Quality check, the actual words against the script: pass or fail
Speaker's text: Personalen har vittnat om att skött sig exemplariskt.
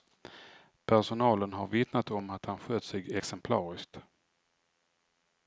fail